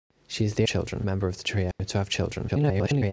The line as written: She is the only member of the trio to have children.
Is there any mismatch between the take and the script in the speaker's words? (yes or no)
yes